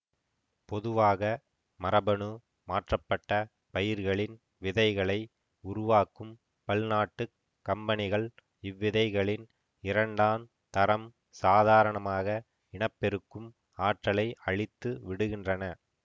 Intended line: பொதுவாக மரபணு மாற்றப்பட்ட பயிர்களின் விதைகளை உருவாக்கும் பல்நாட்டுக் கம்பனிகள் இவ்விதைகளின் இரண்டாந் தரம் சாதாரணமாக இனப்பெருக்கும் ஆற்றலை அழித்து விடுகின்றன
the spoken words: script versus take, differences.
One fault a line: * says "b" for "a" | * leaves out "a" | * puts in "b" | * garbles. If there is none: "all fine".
all fine